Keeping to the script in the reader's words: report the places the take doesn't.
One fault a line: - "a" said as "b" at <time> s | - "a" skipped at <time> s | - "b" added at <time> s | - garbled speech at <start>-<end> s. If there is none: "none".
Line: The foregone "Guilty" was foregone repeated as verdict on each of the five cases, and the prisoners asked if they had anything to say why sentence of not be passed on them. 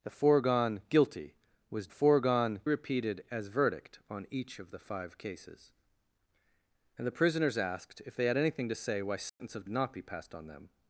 none